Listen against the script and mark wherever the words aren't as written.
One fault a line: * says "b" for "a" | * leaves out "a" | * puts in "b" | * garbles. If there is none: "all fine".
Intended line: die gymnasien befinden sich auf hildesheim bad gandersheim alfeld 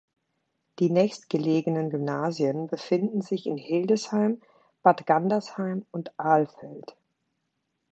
* puts in "nächstgelegenen"
* says "in" for "auf"
* puts in "und"